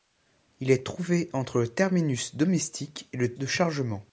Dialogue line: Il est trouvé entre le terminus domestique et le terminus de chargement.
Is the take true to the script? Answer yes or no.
no